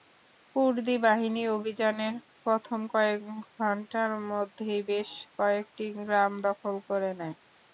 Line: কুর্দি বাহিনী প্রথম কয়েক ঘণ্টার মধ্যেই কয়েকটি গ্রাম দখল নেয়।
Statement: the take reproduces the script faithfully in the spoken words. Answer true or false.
false